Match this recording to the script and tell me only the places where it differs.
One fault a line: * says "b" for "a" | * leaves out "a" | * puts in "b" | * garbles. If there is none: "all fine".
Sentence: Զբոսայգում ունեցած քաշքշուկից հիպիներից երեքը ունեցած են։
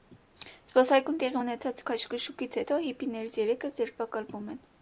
* puts in "տեղի"
* puts in "հետո"
* says "ձերբակալվում" for "ունեցած"